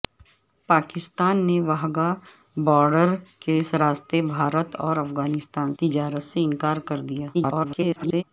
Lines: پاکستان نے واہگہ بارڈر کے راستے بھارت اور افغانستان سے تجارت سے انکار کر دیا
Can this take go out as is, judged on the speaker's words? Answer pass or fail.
fail